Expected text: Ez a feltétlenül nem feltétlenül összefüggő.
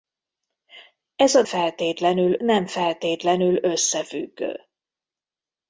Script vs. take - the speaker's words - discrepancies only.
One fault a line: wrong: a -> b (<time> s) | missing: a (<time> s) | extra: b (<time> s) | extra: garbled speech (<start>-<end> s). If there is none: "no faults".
no faults